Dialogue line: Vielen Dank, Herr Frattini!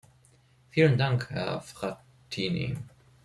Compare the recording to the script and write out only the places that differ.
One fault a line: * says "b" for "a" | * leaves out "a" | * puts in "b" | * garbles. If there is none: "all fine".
all fine